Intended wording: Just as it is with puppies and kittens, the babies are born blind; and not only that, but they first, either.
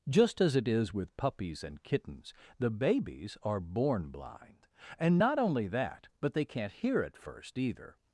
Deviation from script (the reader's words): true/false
true